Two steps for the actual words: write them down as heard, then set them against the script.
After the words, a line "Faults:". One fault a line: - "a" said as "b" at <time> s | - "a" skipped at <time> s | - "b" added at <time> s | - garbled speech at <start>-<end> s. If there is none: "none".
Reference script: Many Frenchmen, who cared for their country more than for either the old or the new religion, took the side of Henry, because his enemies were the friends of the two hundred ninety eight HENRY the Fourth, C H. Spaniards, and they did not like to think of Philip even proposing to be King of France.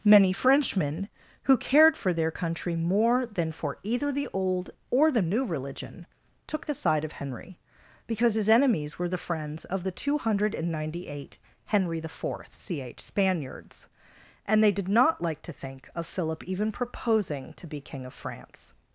Many Frenchmen, who cared for their country more than for either the old or the new religion, took the side of Henry, because his enemies were the friends of the two hundred ninety eight HENRY the Fourth, C H. Spaniards, and they did not like to think of Philip even proposing to be King of France.
Faults:
none